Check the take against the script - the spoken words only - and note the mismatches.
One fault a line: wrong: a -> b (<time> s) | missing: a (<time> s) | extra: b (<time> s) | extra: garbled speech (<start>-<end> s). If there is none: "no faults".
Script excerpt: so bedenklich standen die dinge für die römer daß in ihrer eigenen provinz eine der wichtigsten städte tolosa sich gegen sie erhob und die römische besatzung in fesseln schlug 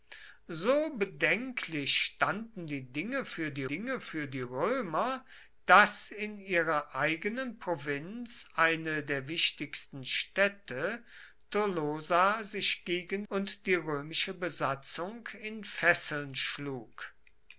extra: dinge für die (3.7 s)
missing: sie erhob (13.3 s)